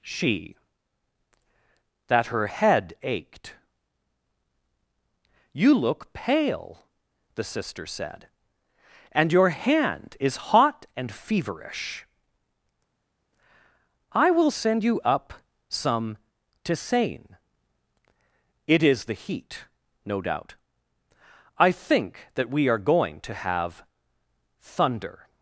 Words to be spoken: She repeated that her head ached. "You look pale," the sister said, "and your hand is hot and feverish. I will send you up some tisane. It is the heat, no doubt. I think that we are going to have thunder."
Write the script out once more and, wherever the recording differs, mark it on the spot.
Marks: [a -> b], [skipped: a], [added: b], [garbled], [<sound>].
She [skipped: repeated] that her head ached. "You look pale," the sister said, "and your hand is hot and feverish. I will send you up some tisane. It is the heat, no doubt. I think that we are going to have thunder."